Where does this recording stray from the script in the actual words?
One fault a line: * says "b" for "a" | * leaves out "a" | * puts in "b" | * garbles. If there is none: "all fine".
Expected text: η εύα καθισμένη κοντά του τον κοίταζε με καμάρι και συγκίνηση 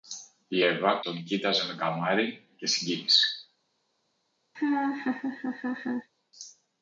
* leaves out "καθισμένη κοντά του"